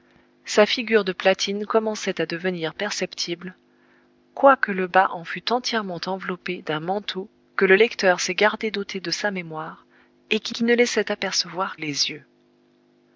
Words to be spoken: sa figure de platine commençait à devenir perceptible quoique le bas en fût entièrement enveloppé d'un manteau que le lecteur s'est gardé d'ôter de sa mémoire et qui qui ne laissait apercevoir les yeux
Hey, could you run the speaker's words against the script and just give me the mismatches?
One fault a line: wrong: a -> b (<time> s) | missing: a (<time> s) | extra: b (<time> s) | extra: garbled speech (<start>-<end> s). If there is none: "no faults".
no faults